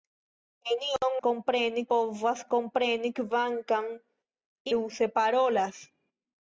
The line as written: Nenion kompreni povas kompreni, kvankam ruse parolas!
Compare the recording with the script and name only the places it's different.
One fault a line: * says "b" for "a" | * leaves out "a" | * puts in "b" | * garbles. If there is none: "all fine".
all fine